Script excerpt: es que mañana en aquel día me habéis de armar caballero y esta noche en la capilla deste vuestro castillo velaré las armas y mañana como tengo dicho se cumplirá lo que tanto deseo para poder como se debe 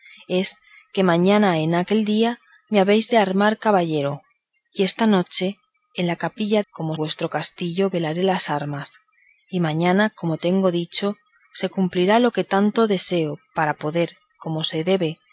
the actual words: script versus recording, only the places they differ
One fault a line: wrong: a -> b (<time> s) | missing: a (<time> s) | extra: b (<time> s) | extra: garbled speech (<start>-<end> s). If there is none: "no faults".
wrong: deste -> como (6.7 s)